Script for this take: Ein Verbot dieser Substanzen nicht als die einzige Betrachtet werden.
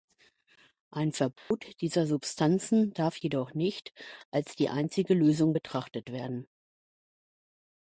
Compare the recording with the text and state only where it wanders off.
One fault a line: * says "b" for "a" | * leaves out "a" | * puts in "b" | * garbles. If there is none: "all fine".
* puts in "darf jedoch"
* puts in "Lösung"